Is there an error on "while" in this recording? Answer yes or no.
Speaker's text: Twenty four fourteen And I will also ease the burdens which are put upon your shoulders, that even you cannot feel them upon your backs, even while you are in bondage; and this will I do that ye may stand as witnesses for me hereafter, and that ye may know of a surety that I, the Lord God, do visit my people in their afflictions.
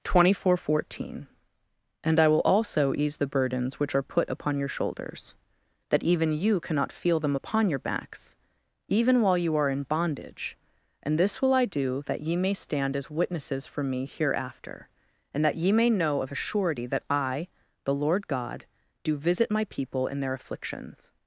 no